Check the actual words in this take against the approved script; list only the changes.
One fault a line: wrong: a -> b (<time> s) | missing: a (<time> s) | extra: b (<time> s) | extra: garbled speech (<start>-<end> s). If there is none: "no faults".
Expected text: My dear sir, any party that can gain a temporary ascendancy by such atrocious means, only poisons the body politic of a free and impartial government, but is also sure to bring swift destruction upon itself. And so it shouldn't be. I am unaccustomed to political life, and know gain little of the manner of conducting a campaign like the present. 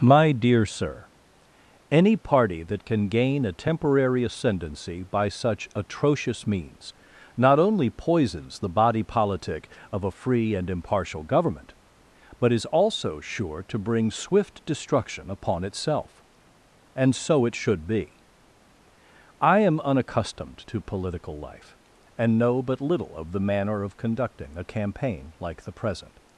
extra: not (7.4 s)
wrong: shouldn't -> should (17.5 s)
wrong: gain -> but (22.6 s)